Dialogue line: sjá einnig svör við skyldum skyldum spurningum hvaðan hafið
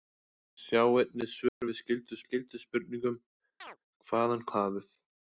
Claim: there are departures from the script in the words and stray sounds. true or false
true